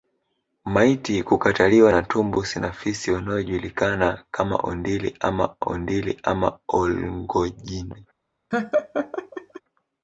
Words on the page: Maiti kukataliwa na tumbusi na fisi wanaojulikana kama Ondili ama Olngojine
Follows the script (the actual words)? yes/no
no